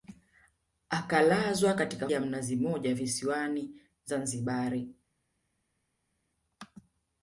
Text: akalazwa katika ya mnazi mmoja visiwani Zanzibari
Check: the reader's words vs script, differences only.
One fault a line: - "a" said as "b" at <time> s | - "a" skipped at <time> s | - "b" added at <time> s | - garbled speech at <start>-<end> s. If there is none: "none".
none